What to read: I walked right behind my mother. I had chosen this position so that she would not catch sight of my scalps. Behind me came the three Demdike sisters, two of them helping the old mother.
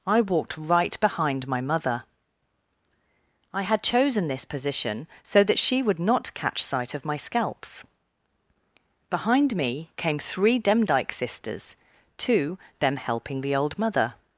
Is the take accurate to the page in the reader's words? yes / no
no